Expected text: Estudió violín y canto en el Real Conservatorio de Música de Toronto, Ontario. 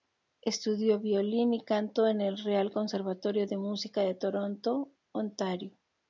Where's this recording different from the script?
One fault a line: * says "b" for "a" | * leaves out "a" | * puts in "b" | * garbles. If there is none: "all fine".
all fine